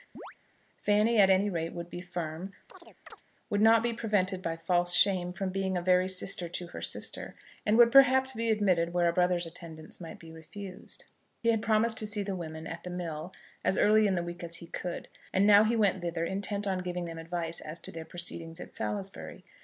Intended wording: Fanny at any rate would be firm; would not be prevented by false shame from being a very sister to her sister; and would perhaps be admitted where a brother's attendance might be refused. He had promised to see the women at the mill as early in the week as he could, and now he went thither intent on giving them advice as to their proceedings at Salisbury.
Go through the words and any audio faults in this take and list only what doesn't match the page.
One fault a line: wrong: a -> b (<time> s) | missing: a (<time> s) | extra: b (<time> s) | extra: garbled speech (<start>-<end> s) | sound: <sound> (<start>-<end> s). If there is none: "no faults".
sound: chirp (0.1-0.3 s)
sound: chirp (2.7-3.2 s)